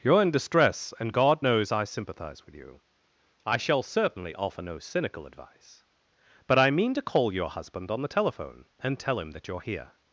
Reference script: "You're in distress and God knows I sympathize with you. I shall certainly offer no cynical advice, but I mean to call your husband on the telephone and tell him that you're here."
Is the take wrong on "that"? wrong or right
right